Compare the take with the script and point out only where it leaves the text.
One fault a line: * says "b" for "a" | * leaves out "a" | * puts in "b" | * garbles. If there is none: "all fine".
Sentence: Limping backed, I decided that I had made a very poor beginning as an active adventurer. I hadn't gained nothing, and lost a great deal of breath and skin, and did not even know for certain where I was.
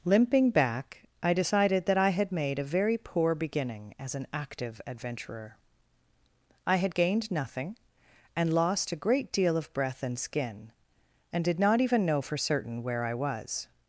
* says "back" for "backed"
* says "had" for "hadn't"